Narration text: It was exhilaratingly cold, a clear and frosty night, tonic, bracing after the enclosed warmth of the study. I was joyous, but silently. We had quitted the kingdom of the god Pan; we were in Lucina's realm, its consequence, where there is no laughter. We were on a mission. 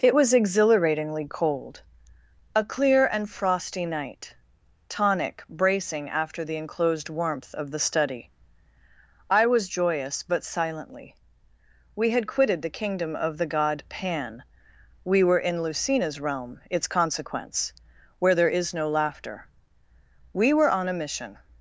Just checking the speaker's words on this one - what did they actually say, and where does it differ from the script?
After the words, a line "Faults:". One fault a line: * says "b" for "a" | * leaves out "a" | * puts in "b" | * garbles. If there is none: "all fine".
It was exhilaratingly cold, a clear and frosty night, tonic, bracing after the enclosed warmth of the study. I was joyous, but silently. We had quitted the kingdom of the god Pan; we were in Lucina's realm, its consequence, where there is no laughter. We were on a mission.
Faults:
all fine